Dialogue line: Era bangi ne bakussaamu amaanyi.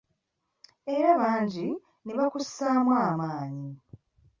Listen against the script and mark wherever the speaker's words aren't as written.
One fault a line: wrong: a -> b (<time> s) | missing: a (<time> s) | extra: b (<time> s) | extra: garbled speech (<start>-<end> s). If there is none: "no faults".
no faults